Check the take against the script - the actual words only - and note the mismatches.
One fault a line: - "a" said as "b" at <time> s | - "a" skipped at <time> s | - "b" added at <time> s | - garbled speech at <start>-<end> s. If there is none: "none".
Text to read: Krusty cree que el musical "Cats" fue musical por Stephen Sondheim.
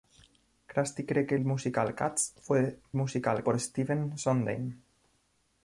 none